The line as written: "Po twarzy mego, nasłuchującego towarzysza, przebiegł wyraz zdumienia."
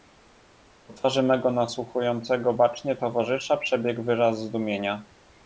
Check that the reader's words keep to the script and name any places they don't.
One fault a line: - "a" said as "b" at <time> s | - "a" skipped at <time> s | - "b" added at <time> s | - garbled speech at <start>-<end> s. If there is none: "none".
- "bacznie" added at 2.5 s